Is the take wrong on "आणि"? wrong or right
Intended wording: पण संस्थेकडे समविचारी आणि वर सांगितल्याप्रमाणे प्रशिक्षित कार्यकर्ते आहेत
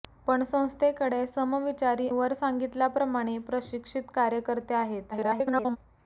wrong